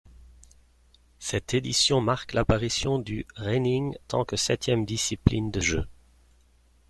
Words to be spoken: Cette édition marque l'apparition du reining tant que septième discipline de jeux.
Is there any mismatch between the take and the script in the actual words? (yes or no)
no